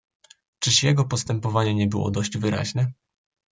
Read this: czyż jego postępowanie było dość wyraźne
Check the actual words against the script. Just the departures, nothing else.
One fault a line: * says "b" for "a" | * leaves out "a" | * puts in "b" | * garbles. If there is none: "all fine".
* puts in "nie"